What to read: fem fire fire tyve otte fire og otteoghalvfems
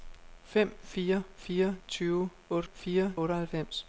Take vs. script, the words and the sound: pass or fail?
pass